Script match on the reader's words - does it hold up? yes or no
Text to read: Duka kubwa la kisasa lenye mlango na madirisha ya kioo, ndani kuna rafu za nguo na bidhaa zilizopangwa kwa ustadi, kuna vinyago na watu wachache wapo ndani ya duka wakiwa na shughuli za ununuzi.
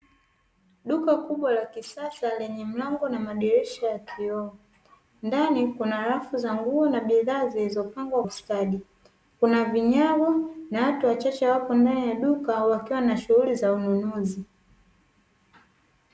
no